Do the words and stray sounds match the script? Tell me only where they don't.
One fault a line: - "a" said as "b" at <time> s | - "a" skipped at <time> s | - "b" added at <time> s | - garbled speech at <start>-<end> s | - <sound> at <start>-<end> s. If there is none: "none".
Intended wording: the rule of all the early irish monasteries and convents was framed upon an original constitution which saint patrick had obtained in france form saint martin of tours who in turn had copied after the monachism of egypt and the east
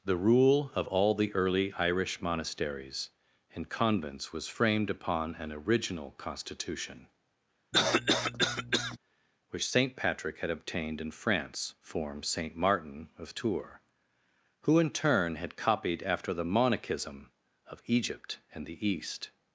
- cough at 7.7-9.0 s